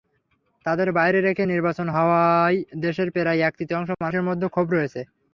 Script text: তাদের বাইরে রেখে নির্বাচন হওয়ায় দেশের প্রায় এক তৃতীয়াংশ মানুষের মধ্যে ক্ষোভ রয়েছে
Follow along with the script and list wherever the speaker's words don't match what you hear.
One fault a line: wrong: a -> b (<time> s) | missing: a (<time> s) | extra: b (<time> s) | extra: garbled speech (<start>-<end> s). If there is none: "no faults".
no faults